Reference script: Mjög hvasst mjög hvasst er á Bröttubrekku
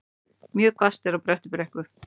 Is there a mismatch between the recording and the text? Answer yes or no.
yes